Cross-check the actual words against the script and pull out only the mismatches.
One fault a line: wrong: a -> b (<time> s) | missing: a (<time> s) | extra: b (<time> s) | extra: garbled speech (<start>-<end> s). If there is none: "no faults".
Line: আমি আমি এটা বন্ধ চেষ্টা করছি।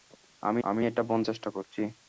no faults